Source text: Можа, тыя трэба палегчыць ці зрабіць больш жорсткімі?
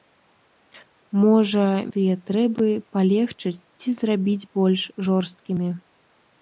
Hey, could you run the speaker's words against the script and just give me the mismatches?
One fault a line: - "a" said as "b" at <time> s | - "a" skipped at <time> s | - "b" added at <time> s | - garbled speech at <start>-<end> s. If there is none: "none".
none